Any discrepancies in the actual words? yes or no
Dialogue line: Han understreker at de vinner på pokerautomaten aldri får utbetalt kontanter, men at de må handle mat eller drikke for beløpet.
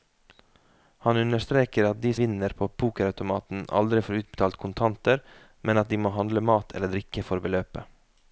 no